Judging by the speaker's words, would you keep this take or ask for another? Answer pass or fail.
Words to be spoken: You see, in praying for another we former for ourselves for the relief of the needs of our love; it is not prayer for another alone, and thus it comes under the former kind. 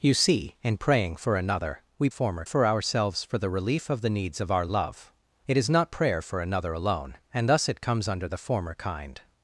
pass